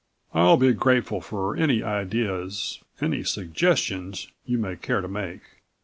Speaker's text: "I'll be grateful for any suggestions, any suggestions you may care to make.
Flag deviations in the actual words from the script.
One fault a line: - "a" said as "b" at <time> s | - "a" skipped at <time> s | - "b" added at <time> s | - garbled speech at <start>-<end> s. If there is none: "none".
- "suggestions" said as "ideas" at 1.8 s